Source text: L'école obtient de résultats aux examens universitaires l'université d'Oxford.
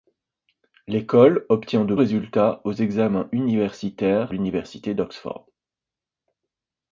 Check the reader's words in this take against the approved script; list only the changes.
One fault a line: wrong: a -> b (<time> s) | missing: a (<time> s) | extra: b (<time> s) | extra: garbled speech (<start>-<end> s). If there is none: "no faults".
no faults